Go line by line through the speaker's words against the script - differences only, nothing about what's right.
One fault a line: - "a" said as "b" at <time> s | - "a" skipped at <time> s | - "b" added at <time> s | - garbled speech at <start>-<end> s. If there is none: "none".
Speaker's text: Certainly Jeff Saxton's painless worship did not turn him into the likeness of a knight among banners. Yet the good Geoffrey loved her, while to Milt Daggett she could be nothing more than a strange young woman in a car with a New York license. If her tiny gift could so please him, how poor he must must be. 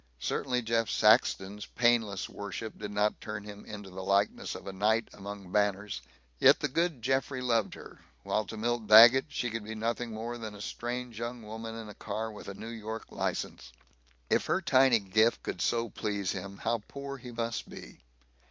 - "must" skipped at 17.7 s